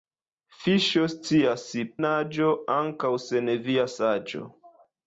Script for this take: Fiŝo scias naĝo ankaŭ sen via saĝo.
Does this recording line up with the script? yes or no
yes